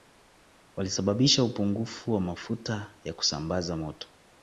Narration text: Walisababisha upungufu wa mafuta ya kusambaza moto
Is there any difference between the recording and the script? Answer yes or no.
no